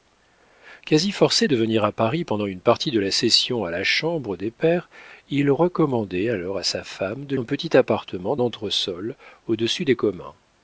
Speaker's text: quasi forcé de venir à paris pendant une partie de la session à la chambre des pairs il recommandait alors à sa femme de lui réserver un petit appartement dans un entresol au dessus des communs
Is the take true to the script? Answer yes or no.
no